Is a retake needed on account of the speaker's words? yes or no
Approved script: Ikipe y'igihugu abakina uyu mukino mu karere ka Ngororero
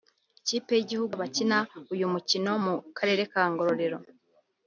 no